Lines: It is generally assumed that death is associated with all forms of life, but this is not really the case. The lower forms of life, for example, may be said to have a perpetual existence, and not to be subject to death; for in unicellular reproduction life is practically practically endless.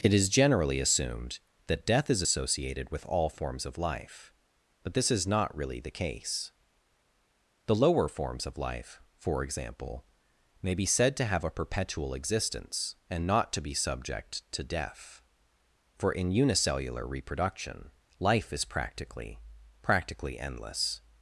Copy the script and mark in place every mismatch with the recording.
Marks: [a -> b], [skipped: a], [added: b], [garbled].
It is generally assumed that death is associated with all forms of life, but this is not really the case. The lower forms of life, for example, may be said to have a perpetual existence, and not to be subject to death; for in unicellular reproduction life is practically practically endless.